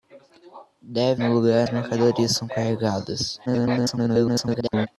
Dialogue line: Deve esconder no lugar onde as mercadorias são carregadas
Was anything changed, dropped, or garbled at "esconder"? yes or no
yes